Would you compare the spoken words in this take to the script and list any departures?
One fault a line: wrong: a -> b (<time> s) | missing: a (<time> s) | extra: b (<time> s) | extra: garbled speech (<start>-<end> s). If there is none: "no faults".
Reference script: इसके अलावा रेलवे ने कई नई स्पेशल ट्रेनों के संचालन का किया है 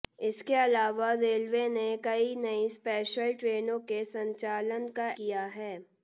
no faults